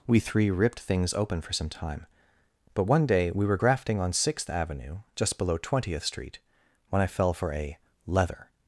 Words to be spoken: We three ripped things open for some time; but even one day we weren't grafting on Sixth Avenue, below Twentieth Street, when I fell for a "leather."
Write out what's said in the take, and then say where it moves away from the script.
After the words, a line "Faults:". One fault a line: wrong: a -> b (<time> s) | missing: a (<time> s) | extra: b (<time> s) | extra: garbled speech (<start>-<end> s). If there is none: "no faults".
We three ripped things open for some time; but one day we were grafting on Sixth Avenue, just below Twentieth Street, when I fell for a "leather."
Faults:
missing: even (2.8 s)
wrong: weren't -> were (3.5 s)
extra: just (5.2 s)